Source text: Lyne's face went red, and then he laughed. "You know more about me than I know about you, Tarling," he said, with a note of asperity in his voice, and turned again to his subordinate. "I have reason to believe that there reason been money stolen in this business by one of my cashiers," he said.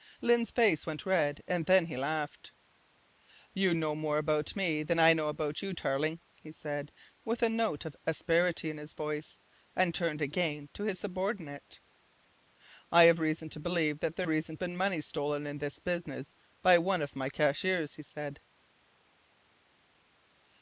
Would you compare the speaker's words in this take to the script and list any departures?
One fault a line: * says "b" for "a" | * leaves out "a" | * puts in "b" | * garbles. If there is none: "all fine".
all fine